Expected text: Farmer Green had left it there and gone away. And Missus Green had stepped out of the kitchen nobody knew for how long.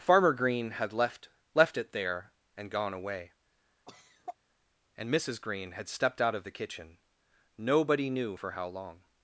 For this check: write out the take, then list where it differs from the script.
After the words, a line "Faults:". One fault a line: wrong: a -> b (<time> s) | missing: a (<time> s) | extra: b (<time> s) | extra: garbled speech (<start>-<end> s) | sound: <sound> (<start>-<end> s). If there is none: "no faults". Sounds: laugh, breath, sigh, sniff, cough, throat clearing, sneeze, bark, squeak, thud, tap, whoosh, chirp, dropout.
Farmer Green had left left it there and gone away. And Missus Green had stepped out of the kitchen nobody knew for how long.
Faults:
extra: left (1.5 s)
sound: cough (3.9-4.4 s)